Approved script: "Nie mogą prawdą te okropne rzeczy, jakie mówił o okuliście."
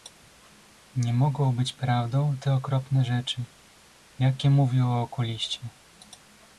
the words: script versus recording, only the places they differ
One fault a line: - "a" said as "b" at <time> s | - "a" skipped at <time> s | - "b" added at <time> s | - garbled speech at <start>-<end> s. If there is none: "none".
- "być" added at 1.6 s